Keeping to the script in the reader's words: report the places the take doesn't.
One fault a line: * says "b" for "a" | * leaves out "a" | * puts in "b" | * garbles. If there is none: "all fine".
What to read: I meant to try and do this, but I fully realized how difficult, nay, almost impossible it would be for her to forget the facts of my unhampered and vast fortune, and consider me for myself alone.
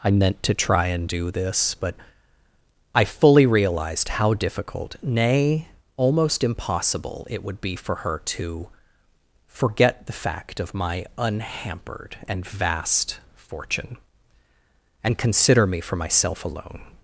* says "fact" for "facts"